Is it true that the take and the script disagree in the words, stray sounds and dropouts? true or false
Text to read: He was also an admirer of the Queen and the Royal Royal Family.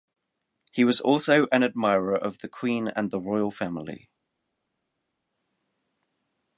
true